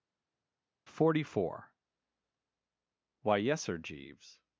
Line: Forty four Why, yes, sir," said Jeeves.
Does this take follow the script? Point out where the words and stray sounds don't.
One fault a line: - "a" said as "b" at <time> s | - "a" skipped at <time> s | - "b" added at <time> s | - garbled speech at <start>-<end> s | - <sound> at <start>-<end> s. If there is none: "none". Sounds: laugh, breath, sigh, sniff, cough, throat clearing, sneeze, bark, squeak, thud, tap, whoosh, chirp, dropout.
- "said" skipped at 3.8 s